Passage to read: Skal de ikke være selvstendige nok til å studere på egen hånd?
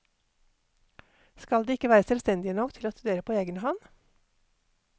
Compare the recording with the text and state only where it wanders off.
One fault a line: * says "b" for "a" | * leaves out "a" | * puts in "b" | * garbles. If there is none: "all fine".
all fine